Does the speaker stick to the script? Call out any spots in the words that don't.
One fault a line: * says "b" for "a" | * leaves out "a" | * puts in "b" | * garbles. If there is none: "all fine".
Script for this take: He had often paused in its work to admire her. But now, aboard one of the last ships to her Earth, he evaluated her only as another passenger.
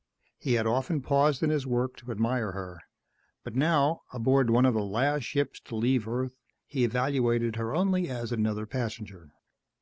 * says "his" for "its"
* says "leave" for "her"